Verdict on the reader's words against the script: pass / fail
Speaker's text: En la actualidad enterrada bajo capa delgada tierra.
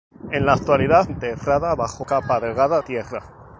pass